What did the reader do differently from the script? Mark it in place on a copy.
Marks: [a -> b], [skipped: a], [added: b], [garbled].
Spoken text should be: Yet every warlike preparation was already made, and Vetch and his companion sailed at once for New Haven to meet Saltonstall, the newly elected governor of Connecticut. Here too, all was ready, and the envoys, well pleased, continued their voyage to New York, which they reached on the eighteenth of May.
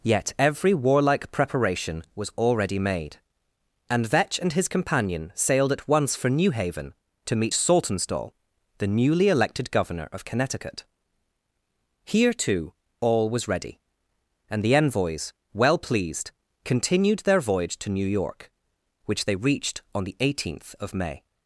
Yet every warlike preparation was already made, and Vetch and his companion sailed at once for New Haven to meet Saltonstall, the newly elected governor of Connecticut. Here too, all was ready, and the envoys, well pleased, continued their voyage to New York, which they reached on the eighteenth of May.